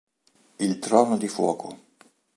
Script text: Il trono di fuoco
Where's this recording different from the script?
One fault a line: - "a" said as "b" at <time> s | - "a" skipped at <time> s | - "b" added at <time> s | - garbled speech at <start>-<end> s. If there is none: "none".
none